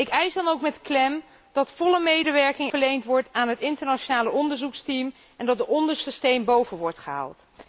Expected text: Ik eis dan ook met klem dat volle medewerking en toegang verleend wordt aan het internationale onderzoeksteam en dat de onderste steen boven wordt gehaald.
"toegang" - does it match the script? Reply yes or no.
no